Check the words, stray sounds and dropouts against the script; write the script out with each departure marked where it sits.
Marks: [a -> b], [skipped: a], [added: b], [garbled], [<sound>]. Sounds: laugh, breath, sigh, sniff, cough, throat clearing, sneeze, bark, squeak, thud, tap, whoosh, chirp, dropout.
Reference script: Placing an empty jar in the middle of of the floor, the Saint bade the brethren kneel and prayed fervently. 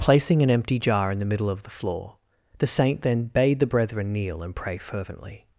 Placing an empty jar in the middle of [skipped: of] the floor, the Saint [added: then] bade the brethren kneel and [prayed -> pray] fervently.